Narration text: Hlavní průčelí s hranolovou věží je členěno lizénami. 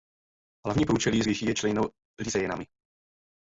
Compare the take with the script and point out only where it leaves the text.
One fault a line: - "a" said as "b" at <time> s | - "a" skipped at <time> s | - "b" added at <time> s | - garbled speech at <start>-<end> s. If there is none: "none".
- "hranolovou" skipped at 1.3 s